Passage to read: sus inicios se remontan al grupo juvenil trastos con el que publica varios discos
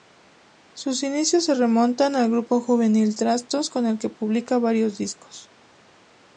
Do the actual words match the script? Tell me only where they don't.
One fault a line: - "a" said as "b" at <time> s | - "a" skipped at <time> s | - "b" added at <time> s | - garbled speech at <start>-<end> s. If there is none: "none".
none